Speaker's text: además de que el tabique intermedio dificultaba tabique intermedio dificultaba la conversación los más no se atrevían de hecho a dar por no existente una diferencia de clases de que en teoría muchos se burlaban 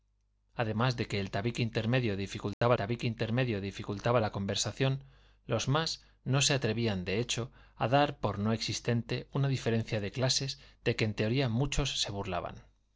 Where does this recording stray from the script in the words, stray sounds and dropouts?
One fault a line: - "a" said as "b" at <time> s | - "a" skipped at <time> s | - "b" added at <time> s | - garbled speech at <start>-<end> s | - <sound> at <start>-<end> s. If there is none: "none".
- dropout at 2.5-2.6 s